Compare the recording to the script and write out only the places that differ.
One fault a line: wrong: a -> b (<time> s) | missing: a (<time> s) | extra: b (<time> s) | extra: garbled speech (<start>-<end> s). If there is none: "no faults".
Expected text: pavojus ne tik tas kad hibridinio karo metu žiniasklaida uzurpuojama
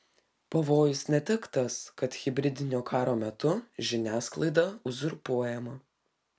no faults